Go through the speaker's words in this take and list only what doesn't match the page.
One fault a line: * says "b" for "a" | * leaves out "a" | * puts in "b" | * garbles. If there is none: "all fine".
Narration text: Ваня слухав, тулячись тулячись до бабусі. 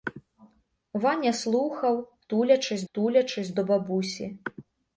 all fine